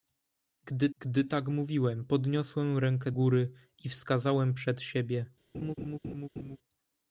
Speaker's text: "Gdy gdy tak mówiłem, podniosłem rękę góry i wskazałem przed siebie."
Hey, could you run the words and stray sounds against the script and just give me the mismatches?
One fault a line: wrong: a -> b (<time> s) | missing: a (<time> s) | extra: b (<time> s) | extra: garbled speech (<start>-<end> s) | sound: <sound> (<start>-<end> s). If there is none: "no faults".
sound: laugh (5.5-6.6 s)